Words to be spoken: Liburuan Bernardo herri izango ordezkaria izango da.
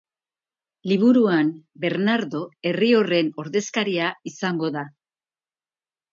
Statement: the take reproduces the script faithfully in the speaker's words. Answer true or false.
false